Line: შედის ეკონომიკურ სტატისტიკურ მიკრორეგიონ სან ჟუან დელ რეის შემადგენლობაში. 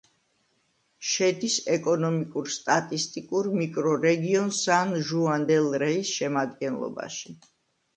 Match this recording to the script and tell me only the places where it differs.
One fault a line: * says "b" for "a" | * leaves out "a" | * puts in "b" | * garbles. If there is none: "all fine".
all fine